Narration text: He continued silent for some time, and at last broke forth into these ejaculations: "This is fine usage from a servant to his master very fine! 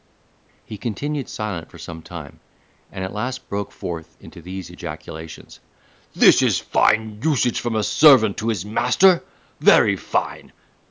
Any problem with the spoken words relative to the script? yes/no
no